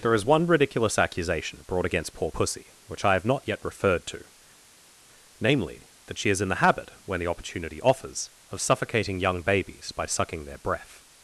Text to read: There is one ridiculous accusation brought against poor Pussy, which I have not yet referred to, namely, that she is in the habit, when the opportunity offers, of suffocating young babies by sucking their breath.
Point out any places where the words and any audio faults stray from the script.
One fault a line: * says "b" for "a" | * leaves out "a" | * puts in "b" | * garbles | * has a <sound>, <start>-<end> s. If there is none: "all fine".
all fine